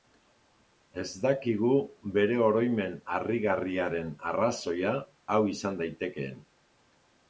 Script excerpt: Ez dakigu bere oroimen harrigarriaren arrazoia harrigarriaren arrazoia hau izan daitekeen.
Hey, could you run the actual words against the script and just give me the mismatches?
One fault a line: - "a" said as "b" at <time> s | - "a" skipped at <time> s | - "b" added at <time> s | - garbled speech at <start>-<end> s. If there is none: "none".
- "harrigarriaren arrazoia" skipped at 5.0 s